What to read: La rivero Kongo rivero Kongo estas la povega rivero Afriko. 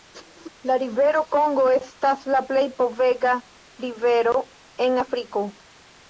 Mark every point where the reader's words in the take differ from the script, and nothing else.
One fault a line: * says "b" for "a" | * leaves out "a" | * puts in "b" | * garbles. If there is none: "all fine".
* leaves out "rivero Kongo"
* puts in "plej"
* puts in "en"